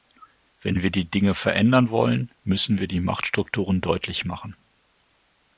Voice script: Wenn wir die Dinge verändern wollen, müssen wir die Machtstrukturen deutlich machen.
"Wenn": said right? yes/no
yes